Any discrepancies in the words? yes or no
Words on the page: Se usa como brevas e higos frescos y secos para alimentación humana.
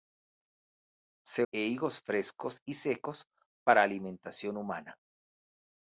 yes